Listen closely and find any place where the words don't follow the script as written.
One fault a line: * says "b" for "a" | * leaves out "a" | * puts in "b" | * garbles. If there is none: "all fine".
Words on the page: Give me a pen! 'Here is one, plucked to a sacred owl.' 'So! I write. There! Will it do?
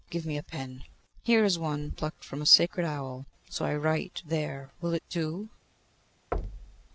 * says "from" for "to"